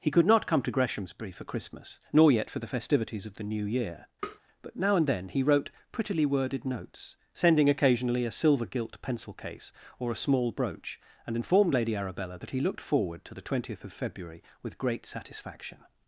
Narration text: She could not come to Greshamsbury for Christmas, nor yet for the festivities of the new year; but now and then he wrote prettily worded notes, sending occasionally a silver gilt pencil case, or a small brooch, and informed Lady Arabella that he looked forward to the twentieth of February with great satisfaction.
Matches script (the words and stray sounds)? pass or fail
fail